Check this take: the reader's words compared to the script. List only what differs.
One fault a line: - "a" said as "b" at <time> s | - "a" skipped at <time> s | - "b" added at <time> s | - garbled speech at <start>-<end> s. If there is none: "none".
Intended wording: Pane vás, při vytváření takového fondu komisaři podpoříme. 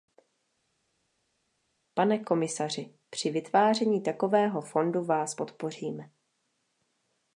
- "vás" said as "komisaři" at 2.2 s
- "komisaři" said as "vás" at 5.0 s